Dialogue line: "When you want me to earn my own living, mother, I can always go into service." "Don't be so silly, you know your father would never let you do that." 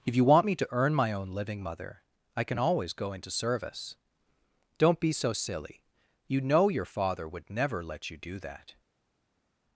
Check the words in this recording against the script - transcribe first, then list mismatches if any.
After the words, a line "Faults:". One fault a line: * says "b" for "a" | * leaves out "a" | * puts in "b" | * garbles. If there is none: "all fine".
"If you want me to earn my own living, mother, I can always go into service." "Don't be so silly, you know your father would never let you do that."
Faults:
* says "If" for "When"